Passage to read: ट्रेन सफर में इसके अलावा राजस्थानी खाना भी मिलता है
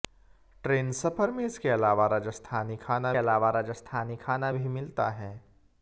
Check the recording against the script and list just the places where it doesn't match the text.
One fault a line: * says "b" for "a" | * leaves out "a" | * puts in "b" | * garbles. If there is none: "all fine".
* puts in "अलावा राजस्थानी खाना"